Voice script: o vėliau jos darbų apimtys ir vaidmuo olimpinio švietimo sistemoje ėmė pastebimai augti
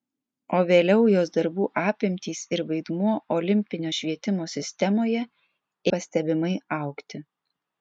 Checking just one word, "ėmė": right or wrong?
wrong